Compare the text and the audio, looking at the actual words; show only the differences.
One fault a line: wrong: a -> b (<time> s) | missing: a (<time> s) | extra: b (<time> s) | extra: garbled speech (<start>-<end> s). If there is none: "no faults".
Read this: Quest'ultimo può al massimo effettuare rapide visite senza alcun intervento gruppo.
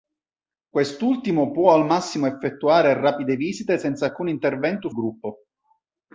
no faults